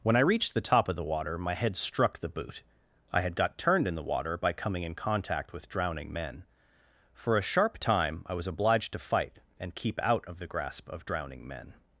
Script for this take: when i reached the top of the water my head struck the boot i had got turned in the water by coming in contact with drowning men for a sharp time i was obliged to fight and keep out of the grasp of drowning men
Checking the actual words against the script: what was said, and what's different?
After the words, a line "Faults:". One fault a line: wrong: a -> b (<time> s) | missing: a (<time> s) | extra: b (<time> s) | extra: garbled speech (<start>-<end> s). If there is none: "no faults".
when i reached the top of the water my head struck the boot i had got turned in the water by coming in contact with drowning men for a sharp time i was obliged to fight and keep out of the grasp of drowning men
Faults:
no faults